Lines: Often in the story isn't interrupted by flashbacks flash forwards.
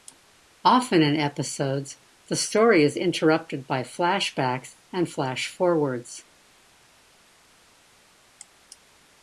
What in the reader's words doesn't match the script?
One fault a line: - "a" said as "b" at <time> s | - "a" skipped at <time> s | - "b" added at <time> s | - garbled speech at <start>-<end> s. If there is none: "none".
- "episodes" added at 1.1 s
- "isn't" said as "is" at 2.8 s
- "and" added at 4.9 s